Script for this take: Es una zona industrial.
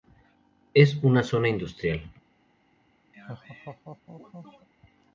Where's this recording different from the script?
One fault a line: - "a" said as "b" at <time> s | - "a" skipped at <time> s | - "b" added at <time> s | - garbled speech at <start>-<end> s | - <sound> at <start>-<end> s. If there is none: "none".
- laugh at 3.1-4.7 s